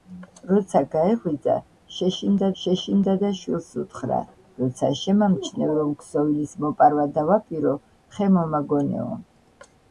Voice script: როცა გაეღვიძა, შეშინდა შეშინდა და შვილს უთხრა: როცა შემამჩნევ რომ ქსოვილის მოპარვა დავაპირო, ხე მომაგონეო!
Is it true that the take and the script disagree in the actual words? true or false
false